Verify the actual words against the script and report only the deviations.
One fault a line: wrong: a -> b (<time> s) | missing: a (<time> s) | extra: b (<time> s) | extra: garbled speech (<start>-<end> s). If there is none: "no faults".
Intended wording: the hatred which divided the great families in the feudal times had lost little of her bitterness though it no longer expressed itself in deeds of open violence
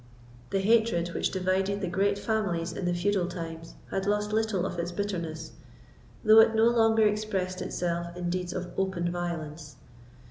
wrong: her -> its (4.8 s)